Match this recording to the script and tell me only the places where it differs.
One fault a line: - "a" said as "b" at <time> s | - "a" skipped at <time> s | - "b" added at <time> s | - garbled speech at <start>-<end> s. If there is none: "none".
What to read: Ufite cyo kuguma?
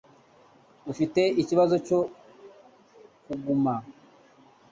- "ikibazo" added at 1.4 s